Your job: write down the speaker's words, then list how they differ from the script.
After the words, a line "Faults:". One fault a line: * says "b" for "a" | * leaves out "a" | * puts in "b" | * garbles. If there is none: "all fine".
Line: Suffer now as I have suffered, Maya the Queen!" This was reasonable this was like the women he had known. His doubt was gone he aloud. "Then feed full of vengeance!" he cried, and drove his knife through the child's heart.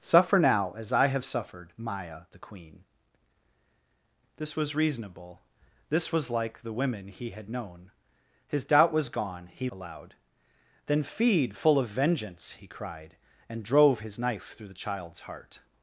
Suffer now as I have suffered, Maya the Queen!" This was reasonable this was like the women he had known. His doubt was gone he aloud. "Then feed full of vengeance!" he cried, and drove his knife through the child's heart.
Faults:
all fine